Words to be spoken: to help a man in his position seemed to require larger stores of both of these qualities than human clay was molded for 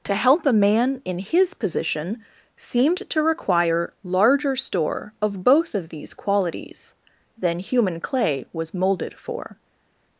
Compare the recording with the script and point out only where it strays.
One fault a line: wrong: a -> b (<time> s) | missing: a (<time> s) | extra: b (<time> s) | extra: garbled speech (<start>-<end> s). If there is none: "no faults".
wrong: stores -> store (4.5 s)